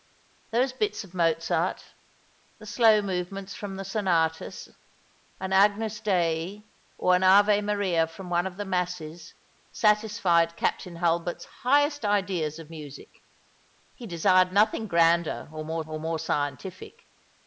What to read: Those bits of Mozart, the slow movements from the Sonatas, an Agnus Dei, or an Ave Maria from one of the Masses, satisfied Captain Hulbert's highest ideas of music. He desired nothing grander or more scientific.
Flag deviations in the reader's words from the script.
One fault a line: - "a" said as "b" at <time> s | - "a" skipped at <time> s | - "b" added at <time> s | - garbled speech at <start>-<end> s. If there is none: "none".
- "or more" added at 15.9 s